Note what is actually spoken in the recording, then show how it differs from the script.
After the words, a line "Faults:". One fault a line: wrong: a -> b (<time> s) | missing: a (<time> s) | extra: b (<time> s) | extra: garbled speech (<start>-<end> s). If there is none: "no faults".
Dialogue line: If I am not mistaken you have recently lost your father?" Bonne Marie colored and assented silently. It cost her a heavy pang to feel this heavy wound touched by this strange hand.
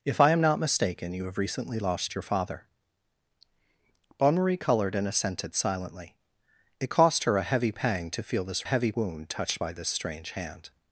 If I am not mistaken you have recently lost your father?" Bonne Marie colored and assented silently. It cost her a heavy pang to feel this heavy wound touched by this strange hand.
Faults:
no faults